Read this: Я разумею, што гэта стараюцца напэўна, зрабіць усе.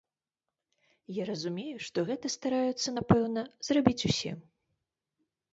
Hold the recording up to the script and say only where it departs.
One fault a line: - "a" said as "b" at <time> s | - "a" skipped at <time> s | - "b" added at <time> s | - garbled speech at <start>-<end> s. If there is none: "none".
none